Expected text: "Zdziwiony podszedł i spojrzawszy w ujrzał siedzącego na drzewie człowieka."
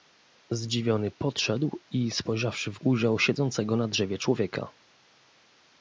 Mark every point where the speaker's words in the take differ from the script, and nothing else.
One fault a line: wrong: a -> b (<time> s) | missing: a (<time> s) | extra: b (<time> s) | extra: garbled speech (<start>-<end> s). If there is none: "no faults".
no faults